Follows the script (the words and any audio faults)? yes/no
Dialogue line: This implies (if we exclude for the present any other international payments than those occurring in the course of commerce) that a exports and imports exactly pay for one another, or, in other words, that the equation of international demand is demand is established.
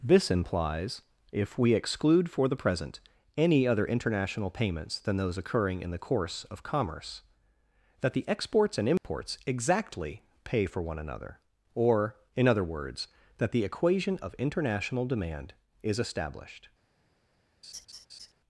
no